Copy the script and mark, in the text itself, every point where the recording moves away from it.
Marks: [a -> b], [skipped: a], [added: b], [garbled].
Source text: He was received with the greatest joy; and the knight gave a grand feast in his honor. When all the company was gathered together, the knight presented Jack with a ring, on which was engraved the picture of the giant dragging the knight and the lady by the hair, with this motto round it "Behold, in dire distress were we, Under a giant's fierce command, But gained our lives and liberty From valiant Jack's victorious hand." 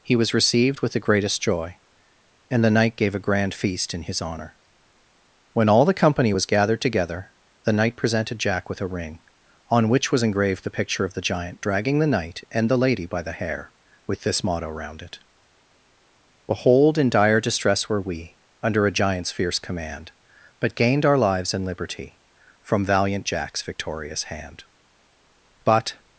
He was received with the greatest joy; and the knight gave a grand feast in his honor. When all the company was gathered together, the knight presented Jack with a ring, on which was engraved the picture of the giant dragging the knight and the lady by the hair, with this motto round it "Behold, in dire distress were we, Under a giant's fierce command, But gained our lives and liberty From valiant Jack's victorious hand." [added: But]